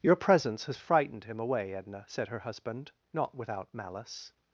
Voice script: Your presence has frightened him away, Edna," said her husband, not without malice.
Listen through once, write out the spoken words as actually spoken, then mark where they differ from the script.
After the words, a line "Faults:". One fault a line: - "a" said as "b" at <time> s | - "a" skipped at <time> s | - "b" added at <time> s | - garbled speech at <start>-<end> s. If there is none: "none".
Your presence has frightened him away, Edna," said her husband, not without malice.
Faults:
none